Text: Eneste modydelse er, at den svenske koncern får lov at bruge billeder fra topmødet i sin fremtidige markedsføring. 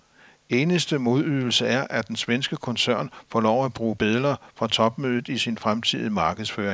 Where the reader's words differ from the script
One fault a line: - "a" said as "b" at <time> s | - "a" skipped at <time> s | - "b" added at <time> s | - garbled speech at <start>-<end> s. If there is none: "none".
none